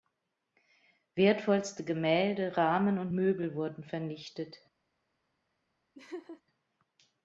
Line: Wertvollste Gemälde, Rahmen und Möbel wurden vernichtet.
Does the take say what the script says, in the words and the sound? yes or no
no